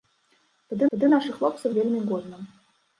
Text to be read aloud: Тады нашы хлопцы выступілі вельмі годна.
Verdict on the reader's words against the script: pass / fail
fail